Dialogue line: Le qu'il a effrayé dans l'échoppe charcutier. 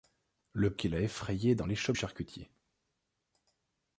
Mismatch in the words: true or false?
false